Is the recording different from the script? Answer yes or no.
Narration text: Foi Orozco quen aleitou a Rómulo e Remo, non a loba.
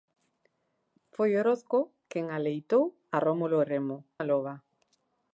yes